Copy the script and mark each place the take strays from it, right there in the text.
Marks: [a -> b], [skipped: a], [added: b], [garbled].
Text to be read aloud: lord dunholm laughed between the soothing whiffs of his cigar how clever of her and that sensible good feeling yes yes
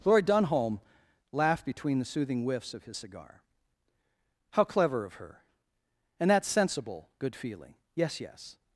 lord dunholm laughed between the soothing whiffs of his cigar how clever of her and that sensible good feeling yes yes